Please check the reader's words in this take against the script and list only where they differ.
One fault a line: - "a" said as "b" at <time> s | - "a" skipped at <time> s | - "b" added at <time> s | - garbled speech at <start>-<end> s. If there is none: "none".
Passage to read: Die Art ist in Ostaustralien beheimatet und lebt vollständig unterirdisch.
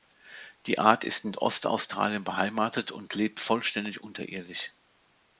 none